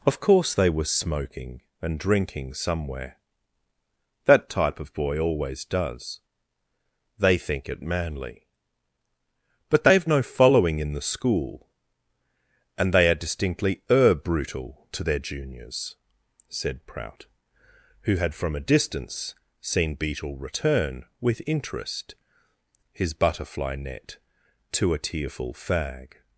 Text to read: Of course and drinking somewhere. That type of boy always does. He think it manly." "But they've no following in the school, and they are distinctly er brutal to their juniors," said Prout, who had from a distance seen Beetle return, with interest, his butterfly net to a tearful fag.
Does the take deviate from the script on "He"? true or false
true